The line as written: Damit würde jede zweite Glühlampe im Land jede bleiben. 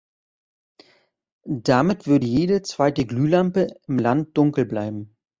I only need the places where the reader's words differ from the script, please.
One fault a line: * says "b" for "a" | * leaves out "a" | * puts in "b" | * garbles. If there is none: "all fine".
* says "dunkel" for "jede"